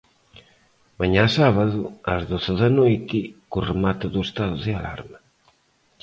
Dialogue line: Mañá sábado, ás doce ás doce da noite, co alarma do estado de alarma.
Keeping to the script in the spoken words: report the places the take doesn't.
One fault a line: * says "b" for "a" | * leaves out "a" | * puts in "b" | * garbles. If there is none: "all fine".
* leaves out "ás doce"
* says "remate" for "alarma"